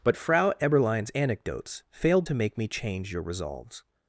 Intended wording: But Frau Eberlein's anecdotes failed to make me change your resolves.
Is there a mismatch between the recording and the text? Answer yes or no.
no